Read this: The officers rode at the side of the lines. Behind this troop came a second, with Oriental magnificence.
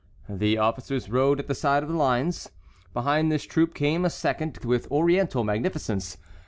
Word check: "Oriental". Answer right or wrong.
right